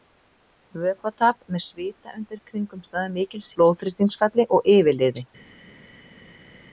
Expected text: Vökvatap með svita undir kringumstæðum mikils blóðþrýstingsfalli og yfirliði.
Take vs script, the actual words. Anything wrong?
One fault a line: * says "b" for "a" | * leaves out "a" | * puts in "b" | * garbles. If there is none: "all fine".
all fine